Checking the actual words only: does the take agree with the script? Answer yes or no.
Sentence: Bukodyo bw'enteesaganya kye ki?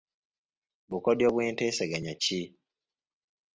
no